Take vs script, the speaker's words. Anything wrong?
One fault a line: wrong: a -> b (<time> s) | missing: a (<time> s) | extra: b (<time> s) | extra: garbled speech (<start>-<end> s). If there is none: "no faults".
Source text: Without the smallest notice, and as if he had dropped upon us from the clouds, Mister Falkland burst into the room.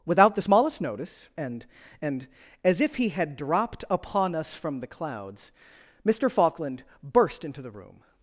extra: and (2.0 s)